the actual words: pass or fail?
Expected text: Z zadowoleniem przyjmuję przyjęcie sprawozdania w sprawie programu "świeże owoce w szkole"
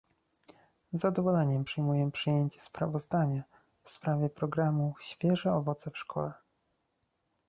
pass